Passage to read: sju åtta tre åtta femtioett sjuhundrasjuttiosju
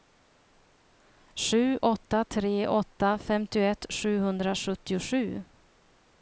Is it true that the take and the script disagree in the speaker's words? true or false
false